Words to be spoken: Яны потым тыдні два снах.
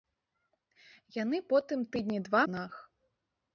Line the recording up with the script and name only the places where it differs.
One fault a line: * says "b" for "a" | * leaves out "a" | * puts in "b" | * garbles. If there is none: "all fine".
all fine